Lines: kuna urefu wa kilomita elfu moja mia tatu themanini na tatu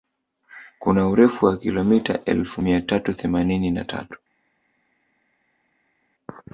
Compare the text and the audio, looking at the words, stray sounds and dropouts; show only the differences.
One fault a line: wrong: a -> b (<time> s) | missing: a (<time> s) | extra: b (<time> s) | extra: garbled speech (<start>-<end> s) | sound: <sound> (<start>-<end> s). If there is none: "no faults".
missing: moja (2.6 s)